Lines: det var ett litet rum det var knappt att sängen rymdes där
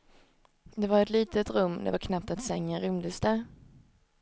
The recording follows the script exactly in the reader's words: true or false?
true